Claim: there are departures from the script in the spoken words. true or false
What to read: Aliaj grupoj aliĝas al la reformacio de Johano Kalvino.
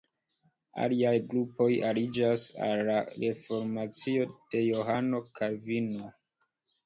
false